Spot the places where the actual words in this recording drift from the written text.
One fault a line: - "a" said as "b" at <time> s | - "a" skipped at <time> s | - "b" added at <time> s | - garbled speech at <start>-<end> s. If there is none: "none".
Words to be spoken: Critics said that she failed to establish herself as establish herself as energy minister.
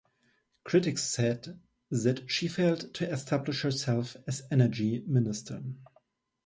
- "establish herself as" skipped at 4.5 s